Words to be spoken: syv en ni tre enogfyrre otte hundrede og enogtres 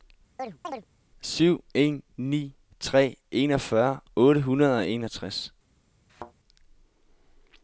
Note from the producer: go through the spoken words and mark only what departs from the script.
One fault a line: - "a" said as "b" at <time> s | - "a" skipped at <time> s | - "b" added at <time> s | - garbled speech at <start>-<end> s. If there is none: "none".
none